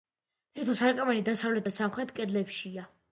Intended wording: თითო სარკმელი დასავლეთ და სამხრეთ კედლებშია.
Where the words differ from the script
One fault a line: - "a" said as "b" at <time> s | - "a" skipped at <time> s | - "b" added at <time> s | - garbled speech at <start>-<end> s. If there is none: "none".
none